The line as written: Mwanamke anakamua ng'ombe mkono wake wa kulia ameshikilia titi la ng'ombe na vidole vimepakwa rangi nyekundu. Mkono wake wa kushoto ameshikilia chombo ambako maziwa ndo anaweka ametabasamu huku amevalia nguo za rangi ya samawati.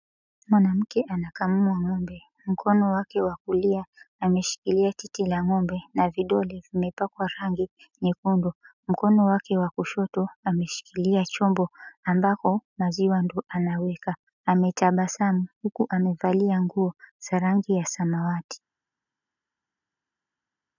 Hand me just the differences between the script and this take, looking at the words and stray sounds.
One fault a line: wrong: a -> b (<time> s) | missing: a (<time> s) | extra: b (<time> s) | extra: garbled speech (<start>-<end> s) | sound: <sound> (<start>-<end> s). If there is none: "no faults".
no faults